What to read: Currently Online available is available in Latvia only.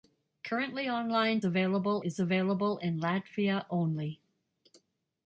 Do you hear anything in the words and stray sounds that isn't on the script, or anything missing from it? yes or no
no